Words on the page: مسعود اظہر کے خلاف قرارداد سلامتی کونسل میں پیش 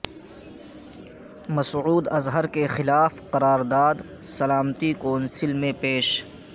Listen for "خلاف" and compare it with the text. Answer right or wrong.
right